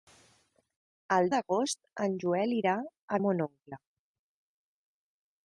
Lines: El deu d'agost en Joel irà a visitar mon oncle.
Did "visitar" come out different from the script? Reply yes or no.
yes